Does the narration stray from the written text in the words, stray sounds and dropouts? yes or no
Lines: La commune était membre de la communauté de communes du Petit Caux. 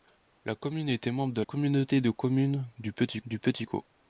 yes